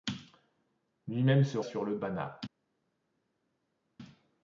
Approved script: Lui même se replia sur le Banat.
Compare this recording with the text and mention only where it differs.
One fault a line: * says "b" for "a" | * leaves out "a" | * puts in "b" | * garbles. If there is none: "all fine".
* leaves out "replia"